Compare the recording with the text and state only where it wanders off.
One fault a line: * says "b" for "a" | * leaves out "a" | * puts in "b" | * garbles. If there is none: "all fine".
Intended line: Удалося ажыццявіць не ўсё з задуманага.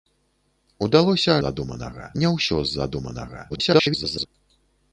* says "задуманага" for "ажыццявіць"
* garbles